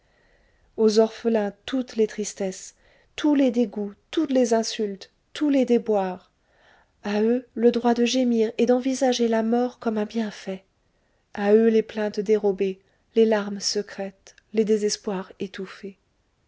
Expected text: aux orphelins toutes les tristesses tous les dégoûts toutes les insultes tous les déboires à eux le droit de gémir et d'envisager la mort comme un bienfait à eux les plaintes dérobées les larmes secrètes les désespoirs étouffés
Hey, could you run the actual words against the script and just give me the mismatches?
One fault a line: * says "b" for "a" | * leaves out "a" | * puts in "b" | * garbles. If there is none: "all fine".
all fine